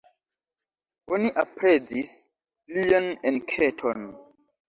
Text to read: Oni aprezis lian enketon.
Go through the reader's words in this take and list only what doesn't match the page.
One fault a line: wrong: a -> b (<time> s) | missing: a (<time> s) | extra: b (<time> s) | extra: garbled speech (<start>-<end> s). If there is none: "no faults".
no faults